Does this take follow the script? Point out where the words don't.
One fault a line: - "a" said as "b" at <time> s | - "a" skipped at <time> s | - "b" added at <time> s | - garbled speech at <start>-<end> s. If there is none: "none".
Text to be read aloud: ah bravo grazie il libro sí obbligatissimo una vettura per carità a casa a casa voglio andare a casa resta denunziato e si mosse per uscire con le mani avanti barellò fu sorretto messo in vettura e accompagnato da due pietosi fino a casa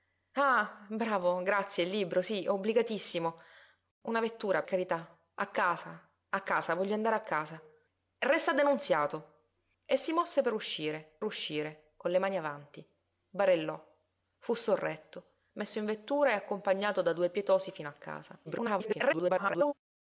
- "per" skipped at 4.6 s
- "uscire" added at 11.2 s
- garbled speech at 18.4-19.7 s